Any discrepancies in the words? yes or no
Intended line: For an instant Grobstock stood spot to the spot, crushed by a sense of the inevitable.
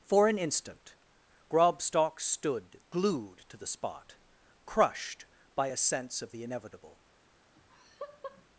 yes